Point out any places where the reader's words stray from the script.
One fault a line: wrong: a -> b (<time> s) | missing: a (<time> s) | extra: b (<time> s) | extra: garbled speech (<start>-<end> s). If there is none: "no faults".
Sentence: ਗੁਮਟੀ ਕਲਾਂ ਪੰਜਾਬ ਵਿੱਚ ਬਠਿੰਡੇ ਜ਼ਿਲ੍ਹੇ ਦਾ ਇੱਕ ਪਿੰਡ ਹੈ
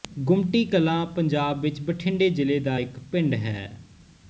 no faults